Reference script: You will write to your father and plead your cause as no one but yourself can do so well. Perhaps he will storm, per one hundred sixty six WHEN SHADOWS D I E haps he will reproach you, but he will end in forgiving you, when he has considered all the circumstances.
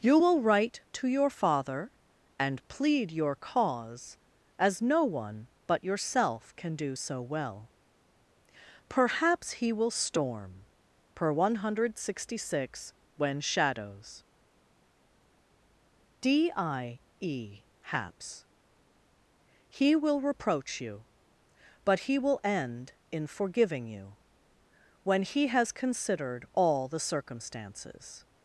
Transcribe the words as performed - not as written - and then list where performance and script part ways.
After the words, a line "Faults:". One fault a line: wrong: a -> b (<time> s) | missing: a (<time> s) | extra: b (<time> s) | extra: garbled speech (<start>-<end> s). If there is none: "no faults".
You will write to your father and plead your cause as no one but yourself can do so well. Perhaps he will storm, per one hundred sixty six WHEN SHADOWS D I E haps he will reproach you, but he will end in forgiving you, when he has considered all the circumstances.
Faults:
no faults